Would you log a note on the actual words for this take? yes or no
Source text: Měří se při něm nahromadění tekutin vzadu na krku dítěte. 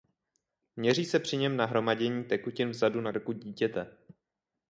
no